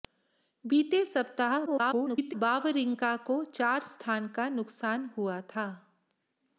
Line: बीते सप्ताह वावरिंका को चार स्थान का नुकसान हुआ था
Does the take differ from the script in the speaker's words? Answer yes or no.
yes